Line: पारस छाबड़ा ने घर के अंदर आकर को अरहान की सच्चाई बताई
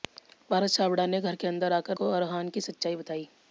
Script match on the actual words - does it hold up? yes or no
yes